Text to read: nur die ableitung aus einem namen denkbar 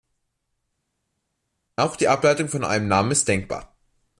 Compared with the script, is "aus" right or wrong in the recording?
wrong